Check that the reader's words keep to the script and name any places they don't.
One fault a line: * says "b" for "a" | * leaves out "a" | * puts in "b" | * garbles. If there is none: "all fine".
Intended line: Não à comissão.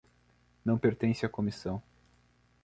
* puts in "pertence"